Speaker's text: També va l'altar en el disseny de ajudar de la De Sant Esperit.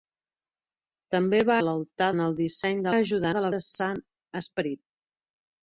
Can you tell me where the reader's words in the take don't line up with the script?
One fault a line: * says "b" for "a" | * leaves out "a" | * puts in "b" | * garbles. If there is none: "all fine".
all fine